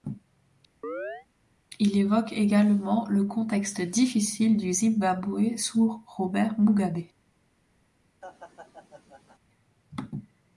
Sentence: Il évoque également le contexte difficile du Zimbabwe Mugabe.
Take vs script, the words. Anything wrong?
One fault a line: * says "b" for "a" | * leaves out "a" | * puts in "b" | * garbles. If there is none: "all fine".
* puts in "sous Robert"